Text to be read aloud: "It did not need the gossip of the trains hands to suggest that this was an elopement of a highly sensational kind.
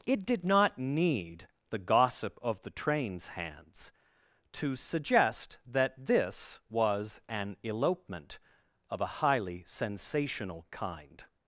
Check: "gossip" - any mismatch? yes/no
no